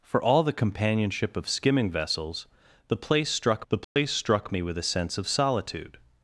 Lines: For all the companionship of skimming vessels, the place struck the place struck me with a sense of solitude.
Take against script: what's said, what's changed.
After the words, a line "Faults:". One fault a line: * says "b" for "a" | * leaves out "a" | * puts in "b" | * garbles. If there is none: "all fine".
For all the companionship of skimming vessels, the place struck the place struck me with a sense of solitude.
Faults:
all fine